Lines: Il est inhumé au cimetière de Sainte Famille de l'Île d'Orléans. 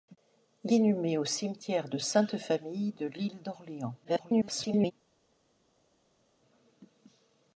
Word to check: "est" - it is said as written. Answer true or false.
false